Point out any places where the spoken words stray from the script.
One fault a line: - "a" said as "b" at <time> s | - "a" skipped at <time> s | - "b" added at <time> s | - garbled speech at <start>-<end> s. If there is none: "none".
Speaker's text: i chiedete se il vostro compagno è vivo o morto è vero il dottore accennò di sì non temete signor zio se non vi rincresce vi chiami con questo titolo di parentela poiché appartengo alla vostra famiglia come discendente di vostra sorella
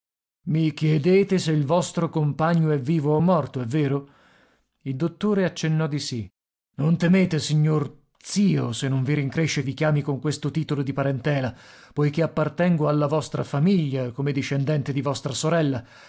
none